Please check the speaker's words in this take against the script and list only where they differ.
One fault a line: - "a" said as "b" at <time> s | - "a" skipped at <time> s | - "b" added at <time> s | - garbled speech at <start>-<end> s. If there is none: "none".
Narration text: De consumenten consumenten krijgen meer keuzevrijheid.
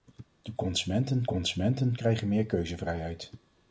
none